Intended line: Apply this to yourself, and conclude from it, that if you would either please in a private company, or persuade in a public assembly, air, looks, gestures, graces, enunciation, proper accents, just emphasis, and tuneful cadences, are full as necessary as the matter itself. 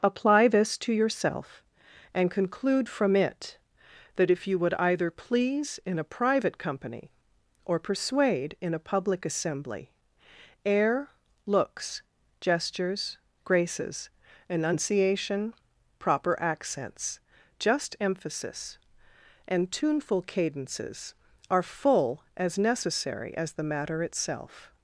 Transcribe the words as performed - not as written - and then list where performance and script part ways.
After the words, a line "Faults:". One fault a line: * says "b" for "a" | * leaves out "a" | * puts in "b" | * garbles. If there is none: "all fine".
Apply this to yourself, and conclude from it, that if you would either please in a private company, or persuade in a public assembly, air, looks, gestures, graces, enunciation, proper accents, just emphasis, and tuneful cadences, are full as necessary as the matter itself.
Faults:
all fine